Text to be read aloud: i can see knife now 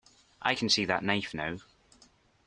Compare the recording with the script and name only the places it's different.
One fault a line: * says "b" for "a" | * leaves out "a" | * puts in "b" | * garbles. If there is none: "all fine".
* puts in "that"